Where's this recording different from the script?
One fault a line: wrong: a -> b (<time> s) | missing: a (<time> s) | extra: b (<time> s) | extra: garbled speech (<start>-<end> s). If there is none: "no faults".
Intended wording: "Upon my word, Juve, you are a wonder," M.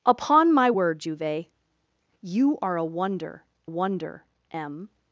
extra: wonder (3.6 s)